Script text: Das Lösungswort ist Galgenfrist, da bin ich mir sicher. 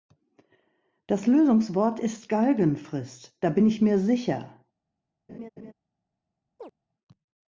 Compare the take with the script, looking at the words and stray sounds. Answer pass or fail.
fail